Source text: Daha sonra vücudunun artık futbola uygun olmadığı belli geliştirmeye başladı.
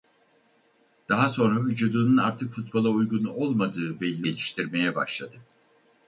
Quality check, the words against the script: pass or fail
pass